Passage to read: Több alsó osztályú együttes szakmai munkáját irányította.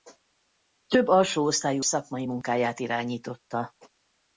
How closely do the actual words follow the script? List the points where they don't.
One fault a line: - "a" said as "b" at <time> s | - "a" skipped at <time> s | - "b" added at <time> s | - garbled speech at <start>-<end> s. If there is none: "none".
- "együttes" skipped at 1.9 s